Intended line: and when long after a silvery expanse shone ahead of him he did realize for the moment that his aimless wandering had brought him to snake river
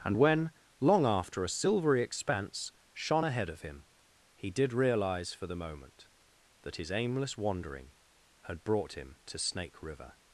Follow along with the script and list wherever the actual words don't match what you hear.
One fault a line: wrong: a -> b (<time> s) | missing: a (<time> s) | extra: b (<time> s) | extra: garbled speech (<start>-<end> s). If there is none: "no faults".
no faults